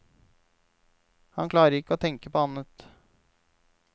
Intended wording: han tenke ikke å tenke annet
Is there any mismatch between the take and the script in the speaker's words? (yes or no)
yes